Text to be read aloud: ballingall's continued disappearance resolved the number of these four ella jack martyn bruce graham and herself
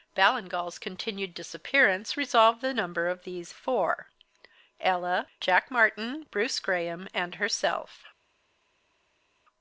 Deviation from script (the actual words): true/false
false